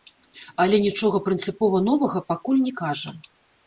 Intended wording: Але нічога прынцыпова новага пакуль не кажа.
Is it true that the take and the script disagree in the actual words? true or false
false